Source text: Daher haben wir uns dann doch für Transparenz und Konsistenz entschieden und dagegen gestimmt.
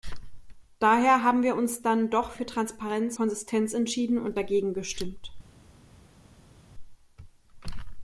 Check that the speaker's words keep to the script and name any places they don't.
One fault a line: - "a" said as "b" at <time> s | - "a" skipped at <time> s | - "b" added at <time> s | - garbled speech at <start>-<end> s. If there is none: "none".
- "und" skipped at 3.2 s